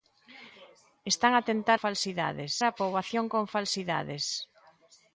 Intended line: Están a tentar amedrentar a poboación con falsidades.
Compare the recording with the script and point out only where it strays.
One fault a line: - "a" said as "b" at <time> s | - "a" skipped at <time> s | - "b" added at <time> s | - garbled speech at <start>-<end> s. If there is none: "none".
- "amedrentar" said as "falsidades" at 1.8 s